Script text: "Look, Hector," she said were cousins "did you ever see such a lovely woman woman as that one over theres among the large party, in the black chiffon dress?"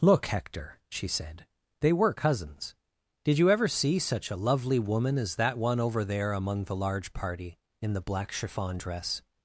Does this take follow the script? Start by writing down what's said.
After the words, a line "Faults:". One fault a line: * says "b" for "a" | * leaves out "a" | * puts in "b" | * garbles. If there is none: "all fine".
"Look, Hector," she said they were cousins "did you ever see such a lovely woman as that one over there among the large party, in the black chiffon dress?"
Faults:
* puts in "they"
* leaves out "woman"
* says "there" for "theres"